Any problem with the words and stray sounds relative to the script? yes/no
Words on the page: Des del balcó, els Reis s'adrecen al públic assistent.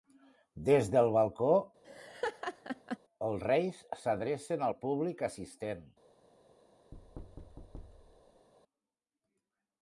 yes